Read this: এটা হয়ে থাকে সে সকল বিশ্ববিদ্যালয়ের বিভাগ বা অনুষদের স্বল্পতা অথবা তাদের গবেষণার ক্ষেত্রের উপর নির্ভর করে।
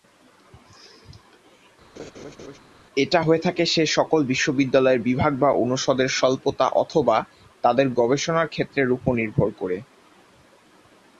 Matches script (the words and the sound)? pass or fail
fail